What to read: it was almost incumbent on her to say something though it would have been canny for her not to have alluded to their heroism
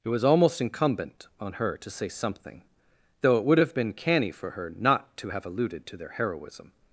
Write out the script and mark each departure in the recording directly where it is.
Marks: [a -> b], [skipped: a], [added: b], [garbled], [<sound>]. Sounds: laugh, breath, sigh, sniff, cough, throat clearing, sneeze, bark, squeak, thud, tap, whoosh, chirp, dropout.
it was almost incumbent on her to say something though it would have been canny for her not to have alluded to their heroism